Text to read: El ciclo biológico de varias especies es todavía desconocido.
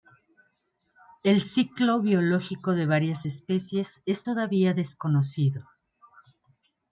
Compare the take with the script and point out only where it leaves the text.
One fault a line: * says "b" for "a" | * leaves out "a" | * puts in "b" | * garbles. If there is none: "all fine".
all fine